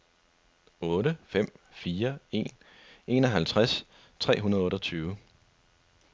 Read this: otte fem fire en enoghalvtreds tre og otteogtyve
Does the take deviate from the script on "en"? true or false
false